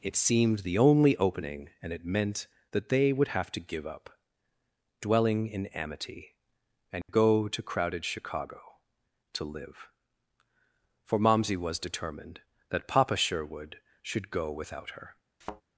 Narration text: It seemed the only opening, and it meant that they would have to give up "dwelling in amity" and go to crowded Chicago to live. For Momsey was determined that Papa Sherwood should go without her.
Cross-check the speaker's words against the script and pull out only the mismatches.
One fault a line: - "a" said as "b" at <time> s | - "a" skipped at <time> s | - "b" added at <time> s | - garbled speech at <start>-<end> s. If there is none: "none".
none